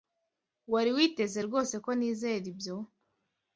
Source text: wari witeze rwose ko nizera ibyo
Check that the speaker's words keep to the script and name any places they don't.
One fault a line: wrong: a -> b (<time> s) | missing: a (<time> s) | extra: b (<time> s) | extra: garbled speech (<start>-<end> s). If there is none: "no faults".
no faults